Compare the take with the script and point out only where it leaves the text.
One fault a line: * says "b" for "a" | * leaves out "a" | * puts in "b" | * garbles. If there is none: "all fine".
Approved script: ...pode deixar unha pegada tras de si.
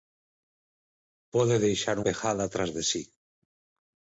* leaves out "unha"